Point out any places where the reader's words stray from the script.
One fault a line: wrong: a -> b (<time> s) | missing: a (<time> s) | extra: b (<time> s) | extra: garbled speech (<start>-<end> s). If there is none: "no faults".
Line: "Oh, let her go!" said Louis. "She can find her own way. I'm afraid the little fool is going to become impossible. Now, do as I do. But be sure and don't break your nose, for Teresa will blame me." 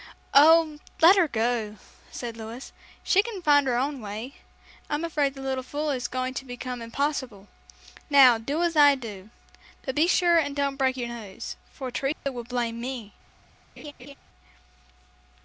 no faults